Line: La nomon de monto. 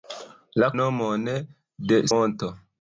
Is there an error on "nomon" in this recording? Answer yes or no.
no